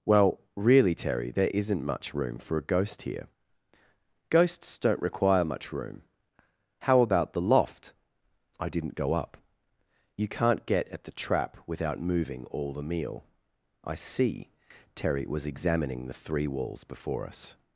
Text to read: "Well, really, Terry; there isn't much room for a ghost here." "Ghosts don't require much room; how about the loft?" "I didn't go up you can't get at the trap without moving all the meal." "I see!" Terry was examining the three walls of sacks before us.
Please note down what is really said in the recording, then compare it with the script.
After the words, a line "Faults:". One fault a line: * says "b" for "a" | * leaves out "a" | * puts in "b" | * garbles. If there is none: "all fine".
"Well, really, Terry; there isn't much room for a ghost here." "Ghosts don't require much room; how about the loft?" "I didn't go up you can't get at the trap without moving all the meal." "I see!" Terry was examining the three walls before us.
Faults:
* leaves out "of sacks"